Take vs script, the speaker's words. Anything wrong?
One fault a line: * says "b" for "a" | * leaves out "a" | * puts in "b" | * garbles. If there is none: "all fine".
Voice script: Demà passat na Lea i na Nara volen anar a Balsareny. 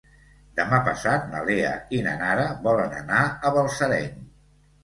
all fine